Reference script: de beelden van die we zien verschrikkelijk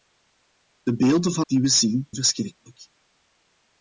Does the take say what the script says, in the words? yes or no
yes